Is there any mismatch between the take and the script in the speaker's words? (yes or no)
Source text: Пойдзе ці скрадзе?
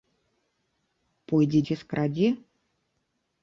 no